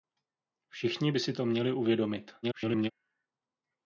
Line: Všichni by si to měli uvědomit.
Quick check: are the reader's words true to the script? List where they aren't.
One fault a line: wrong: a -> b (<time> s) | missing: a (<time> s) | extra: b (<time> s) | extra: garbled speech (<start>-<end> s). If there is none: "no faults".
extra: garbled speech (2.4-2.9 s)